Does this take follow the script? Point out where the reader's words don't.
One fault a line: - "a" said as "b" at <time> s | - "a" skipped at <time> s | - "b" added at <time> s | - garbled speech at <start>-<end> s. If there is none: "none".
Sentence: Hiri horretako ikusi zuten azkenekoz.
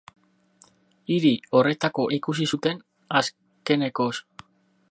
none